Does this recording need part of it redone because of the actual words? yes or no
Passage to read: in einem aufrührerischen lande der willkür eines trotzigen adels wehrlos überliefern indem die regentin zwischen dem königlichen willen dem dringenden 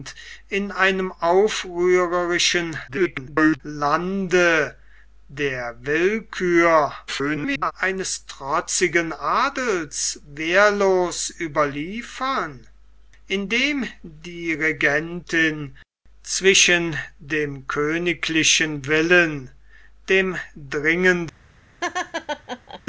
yes